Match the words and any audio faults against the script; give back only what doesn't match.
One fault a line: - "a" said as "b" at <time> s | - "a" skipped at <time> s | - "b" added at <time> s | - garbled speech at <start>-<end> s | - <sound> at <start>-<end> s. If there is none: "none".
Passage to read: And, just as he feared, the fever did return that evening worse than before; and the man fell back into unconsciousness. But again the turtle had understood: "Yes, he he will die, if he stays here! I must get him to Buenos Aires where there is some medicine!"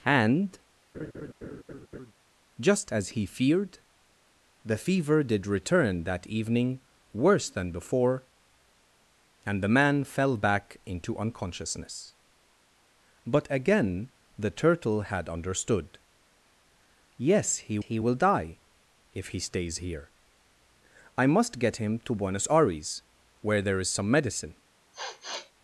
- laugh at 0.9-2.1 s
- sniff at 24.9-25.5 s